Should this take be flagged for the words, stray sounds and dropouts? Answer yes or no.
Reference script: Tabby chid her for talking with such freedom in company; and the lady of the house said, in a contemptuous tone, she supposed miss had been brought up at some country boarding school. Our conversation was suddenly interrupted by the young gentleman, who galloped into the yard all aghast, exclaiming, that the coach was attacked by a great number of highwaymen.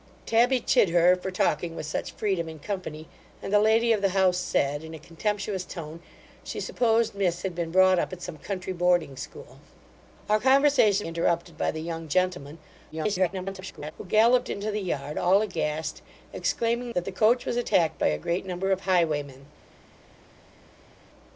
yes